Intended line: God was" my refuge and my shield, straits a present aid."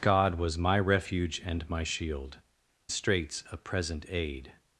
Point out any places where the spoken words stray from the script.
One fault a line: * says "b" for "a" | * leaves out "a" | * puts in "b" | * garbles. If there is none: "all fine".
all fine